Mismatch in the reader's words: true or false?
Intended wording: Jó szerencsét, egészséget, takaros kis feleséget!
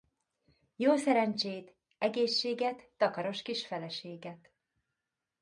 false